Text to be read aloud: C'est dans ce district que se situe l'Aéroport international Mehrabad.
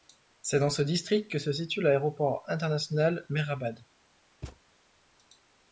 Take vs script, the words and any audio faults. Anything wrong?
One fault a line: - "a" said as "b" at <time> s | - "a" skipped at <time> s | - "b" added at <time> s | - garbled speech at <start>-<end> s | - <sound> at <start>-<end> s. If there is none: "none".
- thud at 4.4-4.6 s